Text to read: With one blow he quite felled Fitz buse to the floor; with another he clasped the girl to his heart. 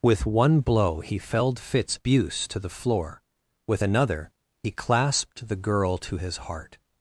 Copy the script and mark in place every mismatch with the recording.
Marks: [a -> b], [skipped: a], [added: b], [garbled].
With one blow he [skipped: quite] felled Fitz buse to the floor; with another he clasped the girl to his heart.